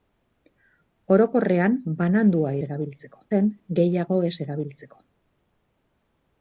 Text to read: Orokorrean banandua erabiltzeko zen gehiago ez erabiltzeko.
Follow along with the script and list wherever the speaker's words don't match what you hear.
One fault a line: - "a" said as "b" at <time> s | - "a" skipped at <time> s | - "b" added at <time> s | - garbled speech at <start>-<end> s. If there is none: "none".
none